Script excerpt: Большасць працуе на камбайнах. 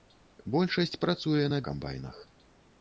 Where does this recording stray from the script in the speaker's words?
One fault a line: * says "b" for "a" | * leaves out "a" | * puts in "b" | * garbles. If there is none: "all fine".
all fine